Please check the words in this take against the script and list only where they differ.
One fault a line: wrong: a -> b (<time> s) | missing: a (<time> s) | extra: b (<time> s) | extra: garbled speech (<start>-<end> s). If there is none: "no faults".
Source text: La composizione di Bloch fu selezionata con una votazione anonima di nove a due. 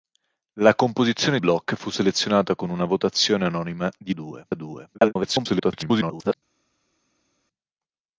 missing: di (1.4 s)
wrong: nove -> due (4.1 s)
extra: garbled speech (4.9-6.3 s)